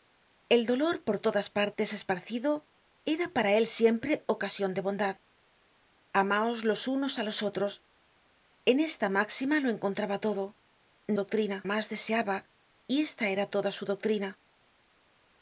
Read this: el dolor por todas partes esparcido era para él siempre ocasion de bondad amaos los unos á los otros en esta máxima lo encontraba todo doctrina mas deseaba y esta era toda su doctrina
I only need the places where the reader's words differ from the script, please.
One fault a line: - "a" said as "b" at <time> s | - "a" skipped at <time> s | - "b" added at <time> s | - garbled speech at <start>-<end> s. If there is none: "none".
none